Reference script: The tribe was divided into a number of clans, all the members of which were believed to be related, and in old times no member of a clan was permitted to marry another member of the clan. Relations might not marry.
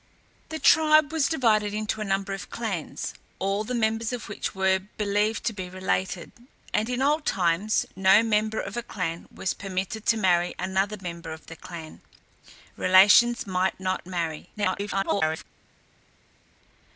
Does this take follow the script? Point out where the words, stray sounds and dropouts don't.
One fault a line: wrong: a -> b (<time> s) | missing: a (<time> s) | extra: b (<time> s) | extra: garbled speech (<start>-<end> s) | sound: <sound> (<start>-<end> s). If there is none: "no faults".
extra: garbled speech (14.6-15.4 s)